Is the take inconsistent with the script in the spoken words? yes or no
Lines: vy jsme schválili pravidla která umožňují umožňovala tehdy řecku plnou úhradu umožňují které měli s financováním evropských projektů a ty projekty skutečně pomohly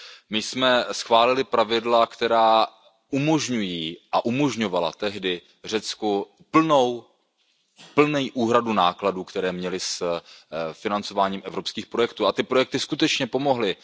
yes